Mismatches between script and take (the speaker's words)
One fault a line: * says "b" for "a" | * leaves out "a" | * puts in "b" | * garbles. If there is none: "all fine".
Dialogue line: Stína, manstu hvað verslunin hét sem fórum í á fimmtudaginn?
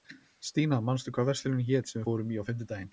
all fine